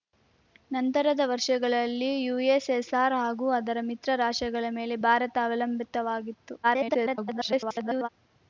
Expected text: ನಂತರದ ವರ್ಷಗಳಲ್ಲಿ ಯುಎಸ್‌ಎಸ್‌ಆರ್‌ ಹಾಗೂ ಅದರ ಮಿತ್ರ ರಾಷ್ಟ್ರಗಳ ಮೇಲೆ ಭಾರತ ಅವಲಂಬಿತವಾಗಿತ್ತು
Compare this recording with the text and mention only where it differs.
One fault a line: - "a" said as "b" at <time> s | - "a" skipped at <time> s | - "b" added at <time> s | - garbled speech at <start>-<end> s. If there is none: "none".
- garbled speech at 6.6-8.1 s